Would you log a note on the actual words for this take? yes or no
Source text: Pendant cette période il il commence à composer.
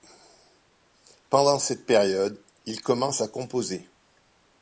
yes